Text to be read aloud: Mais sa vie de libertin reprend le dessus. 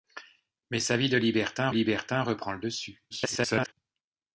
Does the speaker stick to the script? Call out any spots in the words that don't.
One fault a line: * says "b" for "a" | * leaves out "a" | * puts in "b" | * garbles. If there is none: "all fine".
* puts in "libertin"
* garbles